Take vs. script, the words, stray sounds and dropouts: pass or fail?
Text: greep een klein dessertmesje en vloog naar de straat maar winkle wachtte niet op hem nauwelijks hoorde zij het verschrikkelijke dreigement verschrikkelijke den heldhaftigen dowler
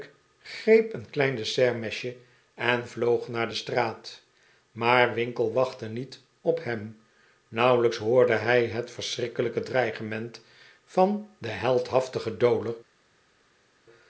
fail